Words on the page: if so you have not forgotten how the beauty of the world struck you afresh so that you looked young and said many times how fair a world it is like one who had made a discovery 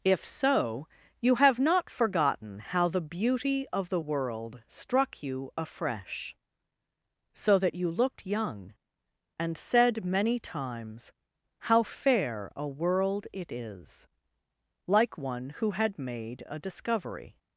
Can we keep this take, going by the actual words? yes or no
yes